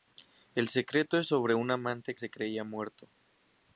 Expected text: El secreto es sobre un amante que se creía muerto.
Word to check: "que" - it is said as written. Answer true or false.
false